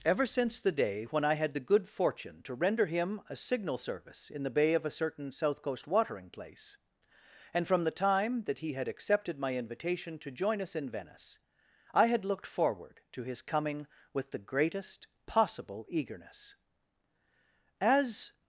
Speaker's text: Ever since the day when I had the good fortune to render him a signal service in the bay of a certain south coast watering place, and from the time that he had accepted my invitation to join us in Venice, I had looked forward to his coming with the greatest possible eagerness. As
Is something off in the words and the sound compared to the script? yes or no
no